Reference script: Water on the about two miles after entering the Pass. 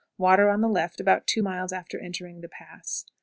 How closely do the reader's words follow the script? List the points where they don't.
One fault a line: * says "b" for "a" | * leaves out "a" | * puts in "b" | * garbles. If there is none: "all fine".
* puts in "left"